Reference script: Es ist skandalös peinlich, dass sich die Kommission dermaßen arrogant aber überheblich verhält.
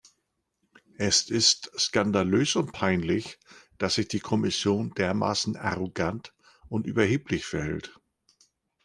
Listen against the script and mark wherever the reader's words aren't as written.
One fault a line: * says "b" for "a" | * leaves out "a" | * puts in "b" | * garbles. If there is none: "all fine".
* puts in "und"
* says "und" for "aber"